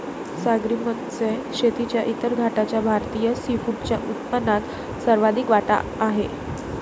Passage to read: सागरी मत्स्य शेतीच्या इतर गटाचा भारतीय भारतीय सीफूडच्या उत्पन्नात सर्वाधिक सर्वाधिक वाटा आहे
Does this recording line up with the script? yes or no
no